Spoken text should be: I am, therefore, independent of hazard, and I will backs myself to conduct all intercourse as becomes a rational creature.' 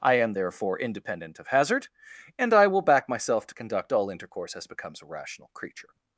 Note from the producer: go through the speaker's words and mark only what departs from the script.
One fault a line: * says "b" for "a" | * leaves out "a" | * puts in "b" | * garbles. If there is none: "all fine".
* says "back" for "backs"